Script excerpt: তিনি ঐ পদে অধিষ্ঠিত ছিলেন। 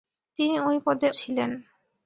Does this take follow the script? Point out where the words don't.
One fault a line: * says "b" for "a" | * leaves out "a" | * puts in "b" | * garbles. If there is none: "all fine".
* leaves out "অধিষ্ঠিত"